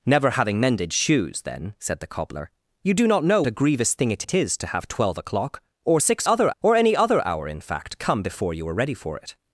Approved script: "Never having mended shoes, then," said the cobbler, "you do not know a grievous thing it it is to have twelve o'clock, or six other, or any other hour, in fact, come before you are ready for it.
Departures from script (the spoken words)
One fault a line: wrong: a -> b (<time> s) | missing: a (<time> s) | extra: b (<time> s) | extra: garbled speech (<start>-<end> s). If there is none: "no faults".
no faults